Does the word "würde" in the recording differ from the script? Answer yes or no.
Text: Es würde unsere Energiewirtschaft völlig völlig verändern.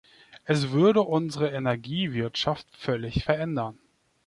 no